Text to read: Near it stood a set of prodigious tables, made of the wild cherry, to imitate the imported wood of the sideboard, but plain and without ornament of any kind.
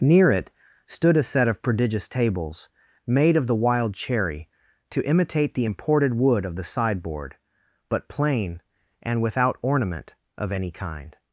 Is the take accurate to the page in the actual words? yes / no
yes